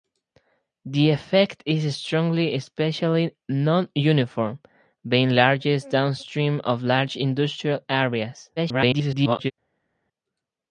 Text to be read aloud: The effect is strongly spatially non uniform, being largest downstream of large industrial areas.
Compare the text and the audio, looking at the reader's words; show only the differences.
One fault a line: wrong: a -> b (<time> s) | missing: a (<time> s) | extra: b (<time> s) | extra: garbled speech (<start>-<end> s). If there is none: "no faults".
extra: garbled speech (8.6-9.5 s)